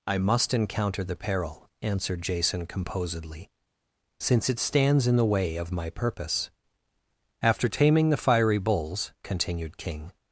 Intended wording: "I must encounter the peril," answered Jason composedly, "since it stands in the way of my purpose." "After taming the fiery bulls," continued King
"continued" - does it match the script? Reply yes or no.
yes